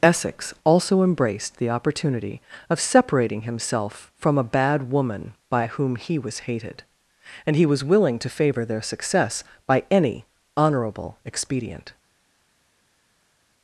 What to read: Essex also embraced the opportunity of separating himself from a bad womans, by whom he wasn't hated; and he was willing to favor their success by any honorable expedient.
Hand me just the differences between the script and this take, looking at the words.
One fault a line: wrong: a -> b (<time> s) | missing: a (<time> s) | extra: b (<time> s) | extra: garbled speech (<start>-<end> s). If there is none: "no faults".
wrong: womans -> woman (4.9 s)
wrong: wasn't -> was (6.2 s)